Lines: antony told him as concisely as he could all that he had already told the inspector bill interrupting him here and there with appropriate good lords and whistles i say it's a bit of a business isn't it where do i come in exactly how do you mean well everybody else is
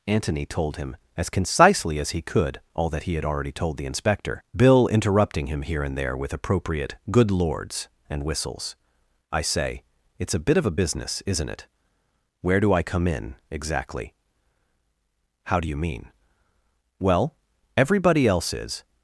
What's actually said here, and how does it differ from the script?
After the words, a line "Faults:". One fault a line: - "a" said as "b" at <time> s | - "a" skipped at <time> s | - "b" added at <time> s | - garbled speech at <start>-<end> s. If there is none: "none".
antony told him as concisely as he could all that he had already told the inspector bill interrupting him here and there with appropriate good lords and whistles i say it's a bit of a business isn't it where do i come in exactly how do you mean well everybody else is
Faults:
none